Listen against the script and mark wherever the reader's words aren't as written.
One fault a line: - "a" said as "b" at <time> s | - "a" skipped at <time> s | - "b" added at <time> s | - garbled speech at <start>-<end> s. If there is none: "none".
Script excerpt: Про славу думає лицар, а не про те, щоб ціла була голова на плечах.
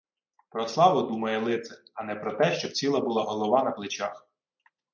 none